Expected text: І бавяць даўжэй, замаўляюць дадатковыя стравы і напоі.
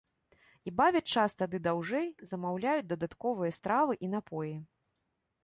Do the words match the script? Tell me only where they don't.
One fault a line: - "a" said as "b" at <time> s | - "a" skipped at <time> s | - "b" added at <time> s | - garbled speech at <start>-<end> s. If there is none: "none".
- "час тады" added at 1.2 s